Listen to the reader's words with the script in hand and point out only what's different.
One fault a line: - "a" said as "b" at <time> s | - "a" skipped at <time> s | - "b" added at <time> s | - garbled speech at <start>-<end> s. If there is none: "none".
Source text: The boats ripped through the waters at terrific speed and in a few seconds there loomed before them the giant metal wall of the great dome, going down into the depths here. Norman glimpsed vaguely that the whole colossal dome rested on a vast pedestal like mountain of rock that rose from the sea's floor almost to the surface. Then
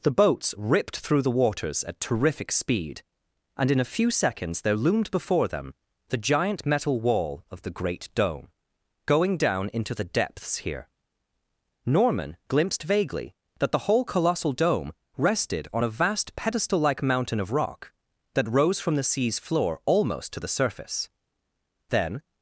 none